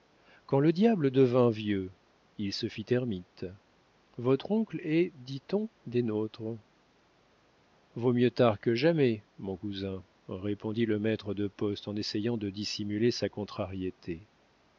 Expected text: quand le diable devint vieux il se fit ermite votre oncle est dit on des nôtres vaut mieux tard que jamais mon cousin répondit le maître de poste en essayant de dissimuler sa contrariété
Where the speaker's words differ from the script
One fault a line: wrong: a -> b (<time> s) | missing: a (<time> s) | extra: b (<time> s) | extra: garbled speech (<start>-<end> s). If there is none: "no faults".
no faults